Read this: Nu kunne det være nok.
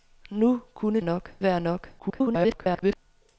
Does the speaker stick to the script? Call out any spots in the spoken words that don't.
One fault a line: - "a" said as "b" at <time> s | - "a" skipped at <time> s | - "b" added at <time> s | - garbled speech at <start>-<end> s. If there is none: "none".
- "det" said as "nok" at 1.0 s
- garbled speech at 2.0-3.0 s